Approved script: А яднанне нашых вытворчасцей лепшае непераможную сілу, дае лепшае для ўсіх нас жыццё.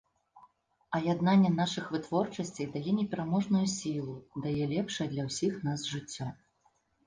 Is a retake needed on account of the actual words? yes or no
yes